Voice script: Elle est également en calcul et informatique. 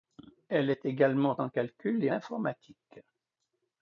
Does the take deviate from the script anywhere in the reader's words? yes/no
no